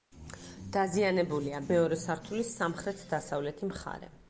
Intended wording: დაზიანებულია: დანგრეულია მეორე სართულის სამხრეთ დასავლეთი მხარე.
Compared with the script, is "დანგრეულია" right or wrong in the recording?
wrong